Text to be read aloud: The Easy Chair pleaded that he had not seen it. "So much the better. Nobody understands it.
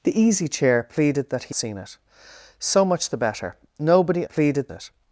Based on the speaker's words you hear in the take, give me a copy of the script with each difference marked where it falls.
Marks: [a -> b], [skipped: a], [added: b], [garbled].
The Easy Chair pleaded that he [skipped: had not] seen it. "So much the better. Nobody [understands -> pleaded] it.